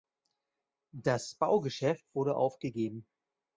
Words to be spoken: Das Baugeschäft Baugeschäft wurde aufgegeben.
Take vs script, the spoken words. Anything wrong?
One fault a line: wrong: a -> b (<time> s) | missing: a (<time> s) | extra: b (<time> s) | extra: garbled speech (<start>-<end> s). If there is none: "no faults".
missing: Baugeschäft (2.1 s)